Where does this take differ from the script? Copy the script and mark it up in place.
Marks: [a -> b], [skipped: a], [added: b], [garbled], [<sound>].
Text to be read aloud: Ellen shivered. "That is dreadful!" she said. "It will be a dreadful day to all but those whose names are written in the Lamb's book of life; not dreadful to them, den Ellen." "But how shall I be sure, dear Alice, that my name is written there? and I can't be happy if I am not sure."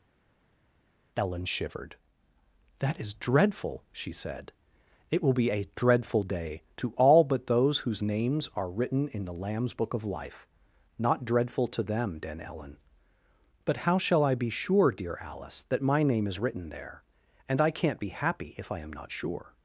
Ellen shivered. "That is dreadful!" she said. "It will be a dreadful day to all but those whose names are written in the Lamb's book of life; not dreadful to them, den Ellen." "But how shall I be sure, dear Alice, that my name is written there? and I can't be happy if I am not sure."